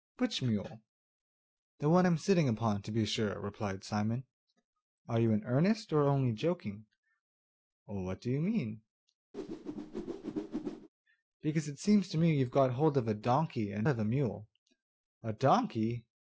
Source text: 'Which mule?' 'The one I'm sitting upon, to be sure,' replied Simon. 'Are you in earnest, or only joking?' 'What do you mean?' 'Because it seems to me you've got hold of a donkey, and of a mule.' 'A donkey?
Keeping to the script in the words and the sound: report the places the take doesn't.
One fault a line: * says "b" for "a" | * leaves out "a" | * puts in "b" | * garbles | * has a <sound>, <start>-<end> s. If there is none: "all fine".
* has a whoosh, 9.3-10.9 s